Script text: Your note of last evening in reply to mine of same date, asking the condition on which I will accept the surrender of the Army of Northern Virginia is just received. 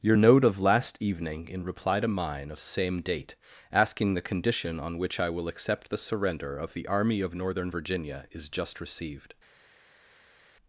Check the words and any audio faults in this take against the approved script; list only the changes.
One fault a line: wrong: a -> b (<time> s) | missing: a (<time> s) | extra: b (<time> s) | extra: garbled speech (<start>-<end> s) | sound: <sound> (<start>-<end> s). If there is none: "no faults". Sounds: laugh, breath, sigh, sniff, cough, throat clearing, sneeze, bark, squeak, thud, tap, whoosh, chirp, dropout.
no faults